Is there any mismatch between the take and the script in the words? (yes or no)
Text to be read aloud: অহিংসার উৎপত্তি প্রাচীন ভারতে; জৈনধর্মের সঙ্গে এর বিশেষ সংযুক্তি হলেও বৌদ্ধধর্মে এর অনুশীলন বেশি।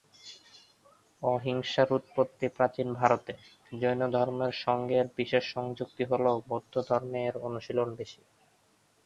no